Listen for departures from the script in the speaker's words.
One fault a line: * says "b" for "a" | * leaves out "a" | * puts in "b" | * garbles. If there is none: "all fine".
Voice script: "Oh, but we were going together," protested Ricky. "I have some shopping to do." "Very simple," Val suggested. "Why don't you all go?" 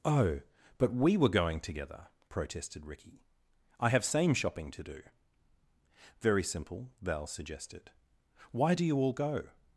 * says "same" for "some"
* says "do" for "don't"